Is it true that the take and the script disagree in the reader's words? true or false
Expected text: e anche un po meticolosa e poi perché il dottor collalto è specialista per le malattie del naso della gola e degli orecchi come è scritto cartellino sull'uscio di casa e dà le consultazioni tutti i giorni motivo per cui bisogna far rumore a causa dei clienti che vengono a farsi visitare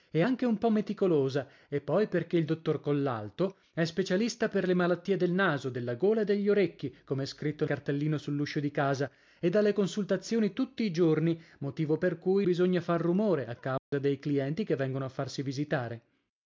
false